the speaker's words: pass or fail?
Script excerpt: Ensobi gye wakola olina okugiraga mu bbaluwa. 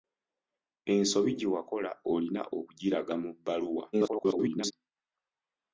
fail